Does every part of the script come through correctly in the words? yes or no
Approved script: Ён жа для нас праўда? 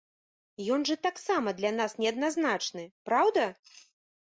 no